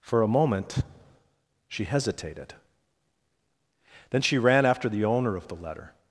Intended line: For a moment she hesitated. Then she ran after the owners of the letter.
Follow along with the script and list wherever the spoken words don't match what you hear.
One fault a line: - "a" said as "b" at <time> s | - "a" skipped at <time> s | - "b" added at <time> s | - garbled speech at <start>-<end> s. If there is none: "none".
- "owners" said as "owner" at 5.0 s